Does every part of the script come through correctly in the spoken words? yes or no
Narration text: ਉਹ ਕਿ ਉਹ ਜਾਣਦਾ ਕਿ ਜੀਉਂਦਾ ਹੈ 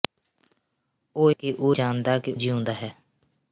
yes